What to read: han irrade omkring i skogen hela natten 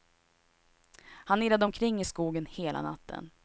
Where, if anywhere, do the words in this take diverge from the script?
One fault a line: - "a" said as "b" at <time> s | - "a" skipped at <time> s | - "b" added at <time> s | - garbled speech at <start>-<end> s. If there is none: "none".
none